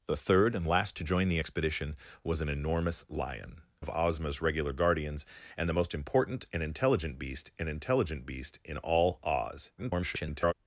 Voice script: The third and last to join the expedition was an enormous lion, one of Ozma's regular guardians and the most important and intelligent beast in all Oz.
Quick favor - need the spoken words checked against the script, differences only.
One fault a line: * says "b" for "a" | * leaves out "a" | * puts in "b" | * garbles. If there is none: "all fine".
* leaves out "one"
* puts in "and intelligent beast"
* garbles